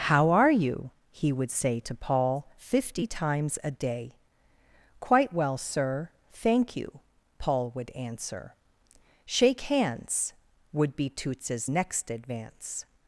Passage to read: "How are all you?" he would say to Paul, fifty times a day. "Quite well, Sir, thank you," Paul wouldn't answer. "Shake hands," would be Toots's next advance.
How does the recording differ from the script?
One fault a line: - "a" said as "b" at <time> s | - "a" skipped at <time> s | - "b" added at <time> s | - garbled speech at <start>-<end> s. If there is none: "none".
- "all" skipped at 0.5 s
- "wouldn't" said as "would" at 7.7 s